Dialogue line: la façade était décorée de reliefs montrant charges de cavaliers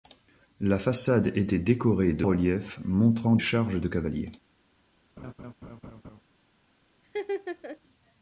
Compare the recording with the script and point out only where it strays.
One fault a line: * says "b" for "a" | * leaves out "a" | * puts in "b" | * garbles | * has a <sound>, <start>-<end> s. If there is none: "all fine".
* has a laugh, 5.2-6.2 s
* has a laugh, 7.0-7.8 s